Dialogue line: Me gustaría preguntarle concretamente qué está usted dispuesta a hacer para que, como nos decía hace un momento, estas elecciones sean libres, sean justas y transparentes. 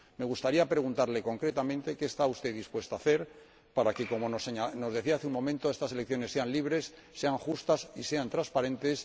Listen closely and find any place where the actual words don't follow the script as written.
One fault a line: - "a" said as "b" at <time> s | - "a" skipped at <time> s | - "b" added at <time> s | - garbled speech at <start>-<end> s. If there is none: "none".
- "sean" added at 8.0 s